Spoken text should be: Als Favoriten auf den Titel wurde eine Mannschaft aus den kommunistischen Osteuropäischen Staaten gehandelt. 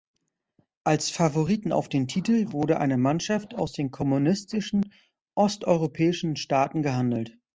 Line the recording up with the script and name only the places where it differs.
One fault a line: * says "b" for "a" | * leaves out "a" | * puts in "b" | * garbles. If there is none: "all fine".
all fine